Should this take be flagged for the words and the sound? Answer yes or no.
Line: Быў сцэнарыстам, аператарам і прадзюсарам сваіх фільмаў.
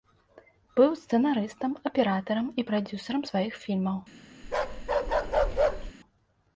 yes